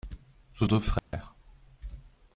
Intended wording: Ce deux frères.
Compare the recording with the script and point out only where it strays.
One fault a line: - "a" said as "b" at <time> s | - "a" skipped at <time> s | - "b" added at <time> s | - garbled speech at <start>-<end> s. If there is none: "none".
none